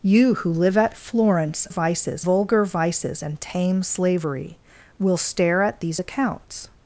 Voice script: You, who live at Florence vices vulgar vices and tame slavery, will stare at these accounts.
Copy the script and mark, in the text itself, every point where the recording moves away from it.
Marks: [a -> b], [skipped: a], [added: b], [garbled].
You, who live at Florence vices vulgar vices and tame slavery, will stare at these accounts.